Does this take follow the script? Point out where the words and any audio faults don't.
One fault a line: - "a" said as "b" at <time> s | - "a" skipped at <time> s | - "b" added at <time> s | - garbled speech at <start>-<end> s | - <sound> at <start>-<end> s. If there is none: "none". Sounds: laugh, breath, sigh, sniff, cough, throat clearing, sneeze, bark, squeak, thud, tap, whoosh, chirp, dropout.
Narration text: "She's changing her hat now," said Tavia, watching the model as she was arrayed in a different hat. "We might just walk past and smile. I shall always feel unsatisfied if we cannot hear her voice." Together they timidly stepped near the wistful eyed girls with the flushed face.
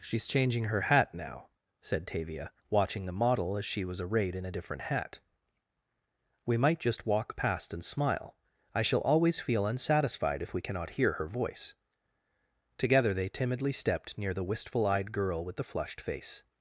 - "girls" said as "girl" at 15.1 s